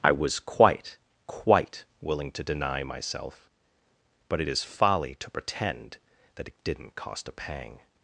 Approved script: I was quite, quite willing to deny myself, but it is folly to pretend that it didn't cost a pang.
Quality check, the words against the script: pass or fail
pass